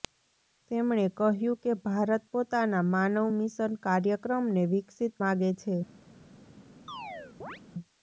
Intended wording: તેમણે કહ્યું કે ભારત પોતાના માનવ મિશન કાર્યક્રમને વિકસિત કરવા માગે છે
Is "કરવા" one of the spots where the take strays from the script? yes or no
yes